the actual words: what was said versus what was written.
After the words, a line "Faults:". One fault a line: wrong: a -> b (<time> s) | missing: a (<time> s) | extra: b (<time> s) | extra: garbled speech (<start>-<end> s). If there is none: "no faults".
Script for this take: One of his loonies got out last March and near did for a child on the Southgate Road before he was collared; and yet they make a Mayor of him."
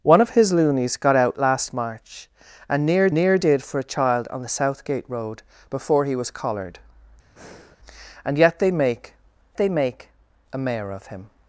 One of his loonies got out last March and near near did for a child on the Southgate Road before he was collared; and yet they make they make a Mayor of him."
Faults:
extra: near (3.1 s)
extra: they make (9.6 s)